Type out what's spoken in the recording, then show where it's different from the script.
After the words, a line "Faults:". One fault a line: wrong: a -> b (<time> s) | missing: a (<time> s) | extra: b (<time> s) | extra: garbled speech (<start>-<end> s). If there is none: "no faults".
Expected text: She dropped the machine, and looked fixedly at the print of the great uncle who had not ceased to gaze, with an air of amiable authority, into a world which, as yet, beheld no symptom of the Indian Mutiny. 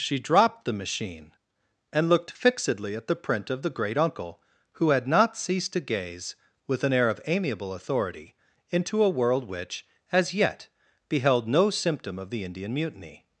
She dropped the machine, and looked fixedly at the print of the great uncle who had not ceased to gaze, with an air of amiable authority, into a world which, as yet, beheld no symptom of the Indian Mutiny.
Faults:
no faults